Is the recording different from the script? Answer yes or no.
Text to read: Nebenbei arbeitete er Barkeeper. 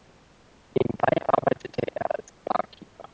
yes